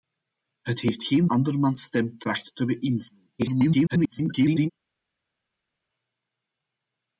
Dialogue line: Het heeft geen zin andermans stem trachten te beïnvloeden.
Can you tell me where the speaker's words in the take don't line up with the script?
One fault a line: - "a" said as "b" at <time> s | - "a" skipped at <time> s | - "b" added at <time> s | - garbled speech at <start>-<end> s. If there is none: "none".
- "zin" skipped at 1.3 s
- garbled speech at 3.4-4.7 s